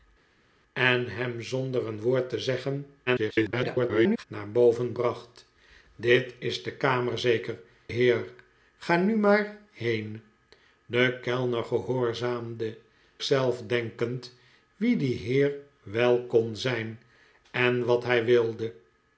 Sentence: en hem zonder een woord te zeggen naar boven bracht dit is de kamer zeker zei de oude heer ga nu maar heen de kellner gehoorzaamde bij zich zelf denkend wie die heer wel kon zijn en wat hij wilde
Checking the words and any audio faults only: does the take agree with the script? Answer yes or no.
no